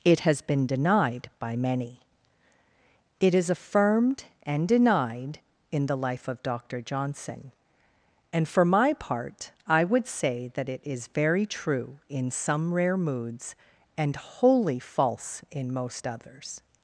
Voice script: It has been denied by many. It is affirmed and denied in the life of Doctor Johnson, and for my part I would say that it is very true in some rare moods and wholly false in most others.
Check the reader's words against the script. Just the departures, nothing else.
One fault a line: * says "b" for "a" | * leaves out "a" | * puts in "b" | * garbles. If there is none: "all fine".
all fine